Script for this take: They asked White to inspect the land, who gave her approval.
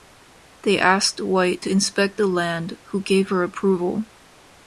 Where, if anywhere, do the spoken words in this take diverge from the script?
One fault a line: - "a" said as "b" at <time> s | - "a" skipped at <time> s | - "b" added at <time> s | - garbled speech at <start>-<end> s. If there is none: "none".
none